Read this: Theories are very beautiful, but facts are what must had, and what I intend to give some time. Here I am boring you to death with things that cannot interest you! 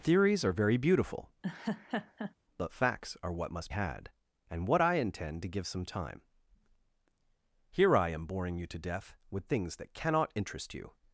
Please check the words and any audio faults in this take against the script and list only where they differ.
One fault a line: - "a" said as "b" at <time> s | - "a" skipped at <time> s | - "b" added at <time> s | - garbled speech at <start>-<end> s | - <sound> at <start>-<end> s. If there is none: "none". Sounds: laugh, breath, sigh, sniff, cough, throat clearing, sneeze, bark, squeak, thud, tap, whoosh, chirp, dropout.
- laugh at 1.4-2.3 s